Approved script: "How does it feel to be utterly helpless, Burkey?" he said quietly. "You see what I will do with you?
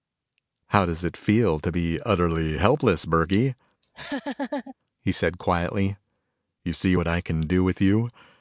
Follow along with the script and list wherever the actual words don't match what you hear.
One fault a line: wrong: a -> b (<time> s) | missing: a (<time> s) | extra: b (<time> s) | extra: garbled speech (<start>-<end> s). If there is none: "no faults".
wrong: will -> can (7.2 s)